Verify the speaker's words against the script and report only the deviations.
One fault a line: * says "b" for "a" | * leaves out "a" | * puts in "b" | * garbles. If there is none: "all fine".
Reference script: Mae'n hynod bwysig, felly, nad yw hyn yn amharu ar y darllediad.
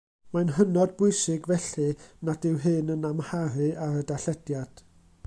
all fine